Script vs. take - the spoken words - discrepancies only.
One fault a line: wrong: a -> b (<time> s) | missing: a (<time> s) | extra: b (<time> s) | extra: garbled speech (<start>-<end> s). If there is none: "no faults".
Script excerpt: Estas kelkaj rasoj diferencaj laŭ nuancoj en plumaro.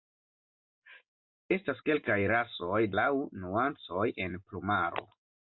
missing: diferencaj (2.8 s)